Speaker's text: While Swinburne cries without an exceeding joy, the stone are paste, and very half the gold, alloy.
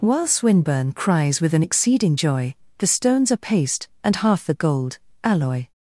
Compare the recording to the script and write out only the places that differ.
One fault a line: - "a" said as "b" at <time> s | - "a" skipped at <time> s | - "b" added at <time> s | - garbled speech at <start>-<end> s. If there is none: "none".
- "without" said as "with" at 1.4 s
- "stone" said as "stones" at 2.9 s
- "very" skipped at 4.1 s